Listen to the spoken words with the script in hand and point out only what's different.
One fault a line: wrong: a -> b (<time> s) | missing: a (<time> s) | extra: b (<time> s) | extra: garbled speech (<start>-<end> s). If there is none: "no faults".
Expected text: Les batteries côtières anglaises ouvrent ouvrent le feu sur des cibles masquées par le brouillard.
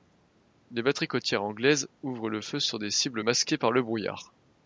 missing: ouvrent (2.3 s)